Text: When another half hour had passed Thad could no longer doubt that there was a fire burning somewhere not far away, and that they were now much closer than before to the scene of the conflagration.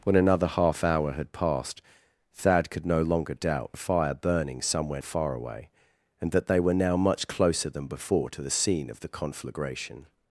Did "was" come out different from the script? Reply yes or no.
yes